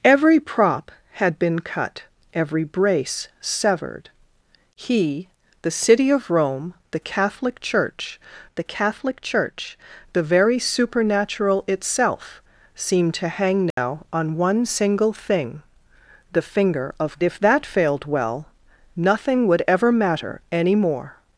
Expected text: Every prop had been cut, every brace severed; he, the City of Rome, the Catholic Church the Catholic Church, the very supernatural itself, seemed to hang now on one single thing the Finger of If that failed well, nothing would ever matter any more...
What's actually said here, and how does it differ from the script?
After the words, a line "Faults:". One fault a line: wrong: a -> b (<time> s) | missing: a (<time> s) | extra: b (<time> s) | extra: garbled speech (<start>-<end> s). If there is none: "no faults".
Every prop had been cut, every brace severed; he, the City of Rome, the Catholic Church the Catholic Church, the very supernatural itself, seemed to hang now on one single thing the Finger of If that failed well, nothing would ever matter any more...
Faults:
no faults